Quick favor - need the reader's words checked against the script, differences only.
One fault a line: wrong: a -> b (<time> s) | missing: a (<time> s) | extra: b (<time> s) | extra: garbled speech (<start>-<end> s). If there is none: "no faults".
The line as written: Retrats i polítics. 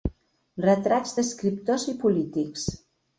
extra: d'escriptors (1.2 s)